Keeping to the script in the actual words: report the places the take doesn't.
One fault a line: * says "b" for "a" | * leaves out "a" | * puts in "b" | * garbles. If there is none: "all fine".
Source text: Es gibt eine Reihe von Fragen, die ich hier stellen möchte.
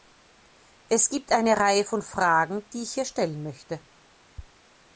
all fine